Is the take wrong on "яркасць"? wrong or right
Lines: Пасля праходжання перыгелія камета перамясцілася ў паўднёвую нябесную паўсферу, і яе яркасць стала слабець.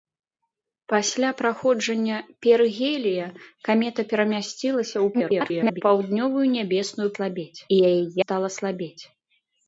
wrong